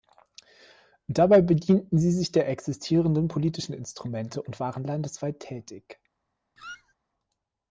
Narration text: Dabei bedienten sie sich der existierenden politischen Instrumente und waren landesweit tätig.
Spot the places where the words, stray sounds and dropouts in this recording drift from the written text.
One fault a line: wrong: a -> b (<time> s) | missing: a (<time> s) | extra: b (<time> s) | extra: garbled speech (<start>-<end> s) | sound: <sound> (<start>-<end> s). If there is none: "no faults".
sound: squeak (6.6-6.9 s)